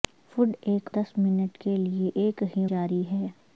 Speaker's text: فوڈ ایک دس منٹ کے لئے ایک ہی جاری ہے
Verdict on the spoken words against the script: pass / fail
pass